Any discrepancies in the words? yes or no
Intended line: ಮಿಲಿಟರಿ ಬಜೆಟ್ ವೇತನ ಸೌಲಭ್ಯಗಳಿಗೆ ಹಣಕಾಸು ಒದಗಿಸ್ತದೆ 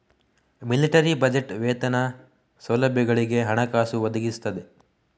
no